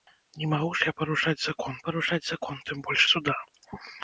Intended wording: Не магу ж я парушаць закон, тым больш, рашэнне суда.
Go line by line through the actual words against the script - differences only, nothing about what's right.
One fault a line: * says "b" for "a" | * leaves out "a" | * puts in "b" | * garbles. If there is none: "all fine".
* puts in "парушаць закон"
* leaves out "рашэнне"